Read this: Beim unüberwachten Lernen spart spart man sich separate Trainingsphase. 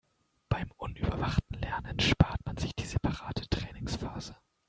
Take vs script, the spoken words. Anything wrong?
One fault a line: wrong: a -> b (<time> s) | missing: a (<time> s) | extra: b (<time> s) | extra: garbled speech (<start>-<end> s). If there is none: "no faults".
missing: spart (2.4 s)
extra: die (2.7 s)